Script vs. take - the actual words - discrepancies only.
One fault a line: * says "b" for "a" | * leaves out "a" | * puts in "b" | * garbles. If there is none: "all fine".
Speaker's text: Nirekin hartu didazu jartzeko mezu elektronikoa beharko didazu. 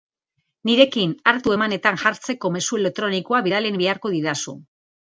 * says "emanetan" for "didazu"
* puts in "bidali"